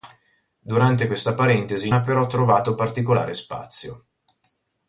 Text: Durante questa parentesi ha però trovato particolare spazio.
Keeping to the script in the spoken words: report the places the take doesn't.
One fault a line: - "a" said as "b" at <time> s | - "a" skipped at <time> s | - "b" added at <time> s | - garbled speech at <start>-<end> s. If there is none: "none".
none